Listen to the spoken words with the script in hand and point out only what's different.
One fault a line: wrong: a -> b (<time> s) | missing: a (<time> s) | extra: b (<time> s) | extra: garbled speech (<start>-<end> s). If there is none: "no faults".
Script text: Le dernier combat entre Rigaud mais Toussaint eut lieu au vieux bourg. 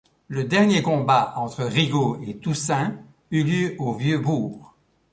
wrong: mais -> et (2.2 s)